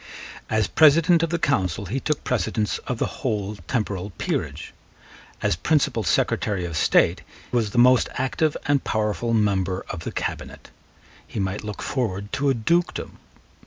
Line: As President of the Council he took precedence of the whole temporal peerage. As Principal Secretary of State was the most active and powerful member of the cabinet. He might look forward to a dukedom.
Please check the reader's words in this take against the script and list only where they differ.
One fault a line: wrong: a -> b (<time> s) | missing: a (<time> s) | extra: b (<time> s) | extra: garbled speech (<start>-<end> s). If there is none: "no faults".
no faults